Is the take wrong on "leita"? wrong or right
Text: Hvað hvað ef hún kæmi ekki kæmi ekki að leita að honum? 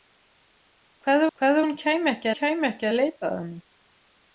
right